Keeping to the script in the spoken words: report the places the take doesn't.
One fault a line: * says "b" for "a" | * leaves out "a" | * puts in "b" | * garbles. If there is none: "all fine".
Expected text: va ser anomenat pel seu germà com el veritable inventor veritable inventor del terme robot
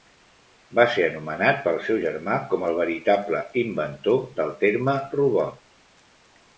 * leaves out "veritable inventor"